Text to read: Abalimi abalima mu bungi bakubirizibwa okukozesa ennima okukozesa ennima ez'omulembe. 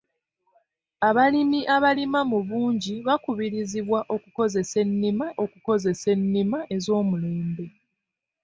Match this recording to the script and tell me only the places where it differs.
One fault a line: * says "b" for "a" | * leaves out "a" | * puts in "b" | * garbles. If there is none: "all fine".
all fine